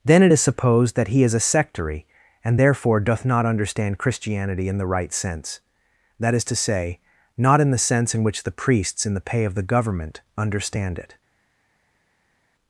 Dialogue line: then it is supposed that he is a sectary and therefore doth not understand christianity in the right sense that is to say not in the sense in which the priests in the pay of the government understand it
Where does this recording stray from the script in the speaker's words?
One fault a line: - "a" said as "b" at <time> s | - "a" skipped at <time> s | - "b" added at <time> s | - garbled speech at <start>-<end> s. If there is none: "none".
none